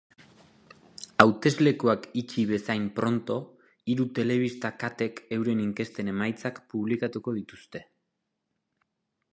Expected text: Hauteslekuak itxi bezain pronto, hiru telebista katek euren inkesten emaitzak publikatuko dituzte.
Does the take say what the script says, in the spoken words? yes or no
yes